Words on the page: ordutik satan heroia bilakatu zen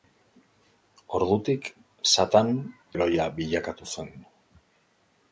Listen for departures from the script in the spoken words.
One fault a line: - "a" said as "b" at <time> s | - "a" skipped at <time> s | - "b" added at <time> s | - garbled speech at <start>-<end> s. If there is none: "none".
none